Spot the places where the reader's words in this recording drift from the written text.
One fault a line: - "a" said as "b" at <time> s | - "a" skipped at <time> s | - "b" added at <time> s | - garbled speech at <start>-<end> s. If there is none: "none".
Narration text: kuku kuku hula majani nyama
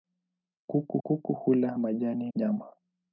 none